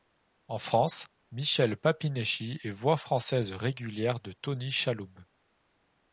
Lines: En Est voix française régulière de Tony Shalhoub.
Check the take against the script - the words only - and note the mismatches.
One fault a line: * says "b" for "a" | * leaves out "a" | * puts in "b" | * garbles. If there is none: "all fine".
* puts in "France Michel Papineschi"